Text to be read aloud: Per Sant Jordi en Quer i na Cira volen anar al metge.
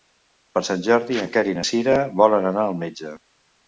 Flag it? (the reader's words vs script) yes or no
no